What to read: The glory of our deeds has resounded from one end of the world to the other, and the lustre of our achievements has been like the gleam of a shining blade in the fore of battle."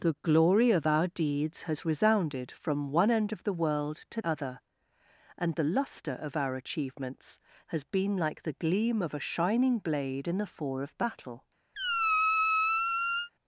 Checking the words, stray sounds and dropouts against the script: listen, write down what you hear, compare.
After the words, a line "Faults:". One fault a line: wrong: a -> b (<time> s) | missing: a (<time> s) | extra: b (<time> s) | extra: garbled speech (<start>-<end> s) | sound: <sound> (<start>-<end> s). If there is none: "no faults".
The glory of our deeds has resounded from one end of the world to other, and the lustre of our achievements has been like the gleam of a shining blade in the fore of battle."
Faults:
missing: the (4.2 s)
sound: squeak (11.7-13.3 s)